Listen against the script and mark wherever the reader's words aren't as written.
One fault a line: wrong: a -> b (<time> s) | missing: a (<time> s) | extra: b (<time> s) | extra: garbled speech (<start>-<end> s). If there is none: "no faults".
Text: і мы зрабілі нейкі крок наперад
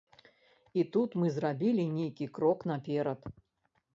extra: тут (0.9 s)